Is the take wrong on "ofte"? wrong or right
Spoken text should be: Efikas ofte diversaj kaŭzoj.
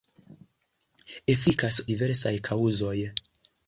wrong